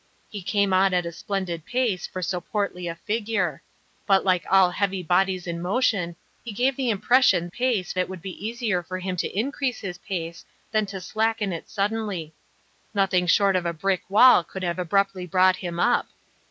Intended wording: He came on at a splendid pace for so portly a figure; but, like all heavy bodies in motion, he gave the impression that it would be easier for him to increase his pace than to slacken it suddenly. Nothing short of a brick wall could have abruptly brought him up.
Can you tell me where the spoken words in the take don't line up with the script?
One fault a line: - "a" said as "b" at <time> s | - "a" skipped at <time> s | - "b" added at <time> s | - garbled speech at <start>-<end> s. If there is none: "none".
- "that" said as "pace" at 7.5 s